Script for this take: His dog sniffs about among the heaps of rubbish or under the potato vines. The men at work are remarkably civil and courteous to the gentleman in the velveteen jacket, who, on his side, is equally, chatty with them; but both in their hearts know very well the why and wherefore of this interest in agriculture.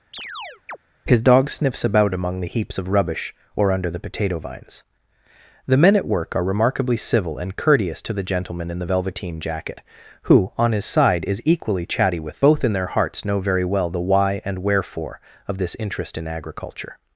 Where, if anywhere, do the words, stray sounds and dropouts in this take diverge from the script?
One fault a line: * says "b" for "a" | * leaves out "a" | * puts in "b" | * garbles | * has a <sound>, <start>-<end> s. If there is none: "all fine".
* has a chirp, 0.1-0.8 s
* leaves out "them but"